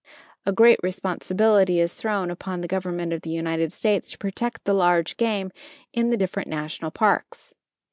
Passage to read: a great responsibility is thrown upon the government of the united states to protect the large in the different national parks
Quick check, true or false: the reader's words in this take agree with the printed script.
false